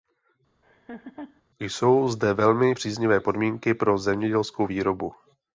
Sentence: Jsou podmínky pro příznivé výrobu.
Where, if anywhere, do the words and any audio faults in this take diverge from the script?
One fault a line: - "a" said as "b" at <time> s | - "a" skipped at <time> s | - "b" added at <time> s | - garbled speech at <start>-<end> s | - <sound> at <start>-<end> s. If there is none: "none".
- laugh at 0.6-1.4 s
- "zde velmi příznivé" added at 2.1 s
- "příznivé" said as "zemědělskou" at 4.0 s